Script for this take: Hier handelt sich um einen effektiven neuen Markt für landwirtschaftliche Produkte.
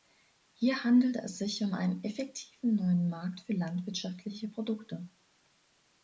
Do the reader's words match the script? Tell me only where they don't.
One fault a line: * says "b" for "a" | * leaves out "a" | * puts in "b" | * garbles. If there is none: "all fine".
* puts in "es"